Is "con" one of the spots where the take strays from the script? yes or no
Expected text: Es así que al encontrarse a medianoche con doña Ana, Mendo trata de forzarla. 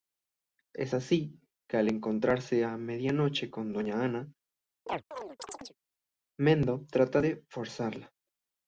no